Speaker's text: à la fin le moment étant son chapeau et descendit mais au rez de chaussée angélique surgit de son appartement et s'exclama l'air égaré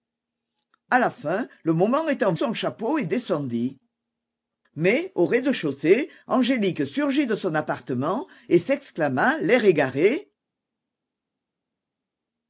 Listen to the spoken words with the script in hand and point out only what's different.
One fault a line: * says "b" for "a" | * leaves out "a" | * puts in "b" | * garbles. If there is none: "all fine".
all fine